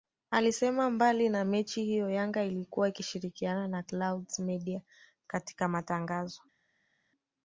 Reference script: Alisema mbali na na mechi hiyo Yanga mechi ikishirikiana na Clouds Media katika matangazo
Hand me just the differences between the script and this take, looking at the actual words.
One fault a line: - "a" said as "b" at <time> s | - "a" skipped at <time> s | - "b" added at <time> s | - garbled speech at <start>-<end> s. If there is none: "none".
- "na" skipped at 1.4 s
- "mechi" said as "ilikuwa" at 2.4 s